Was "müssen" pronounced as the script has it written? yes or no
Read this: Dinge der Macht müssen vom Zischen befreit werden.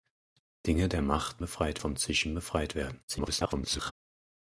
no